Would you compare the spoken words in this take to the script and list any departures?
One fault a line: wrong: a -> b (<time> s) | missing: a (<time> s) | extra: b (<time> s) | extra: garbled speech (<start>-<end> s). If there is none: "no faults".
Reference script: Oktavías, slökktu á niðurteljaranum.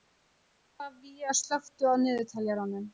no faults